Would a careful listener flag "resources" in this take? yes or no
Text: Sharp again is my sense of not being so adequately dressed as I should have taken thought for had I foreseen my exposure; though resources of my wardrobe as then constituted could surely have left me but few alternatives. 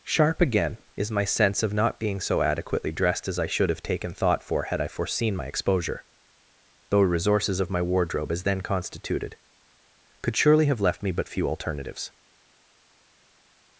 no